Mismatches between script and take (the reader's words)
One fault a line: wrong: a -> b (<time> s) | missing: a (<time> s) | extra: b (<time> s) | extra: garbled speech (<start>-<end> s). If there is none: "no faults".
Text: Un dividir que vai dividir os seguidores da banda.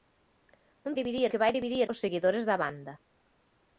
no faults